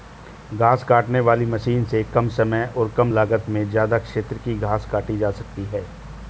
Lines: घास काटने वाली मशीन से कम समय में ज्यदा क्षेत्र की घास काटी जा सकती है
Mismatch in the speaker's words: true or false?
true